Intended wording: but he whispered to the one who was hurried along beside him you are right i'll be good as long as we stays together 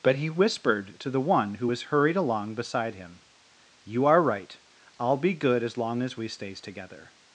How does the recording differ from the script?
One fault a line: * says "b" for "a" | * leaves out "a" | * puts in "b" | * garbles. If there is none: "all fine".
all fine